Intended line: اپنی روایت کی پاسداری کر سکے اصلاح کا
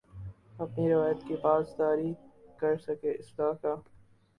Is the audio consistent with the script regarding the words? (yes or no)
yes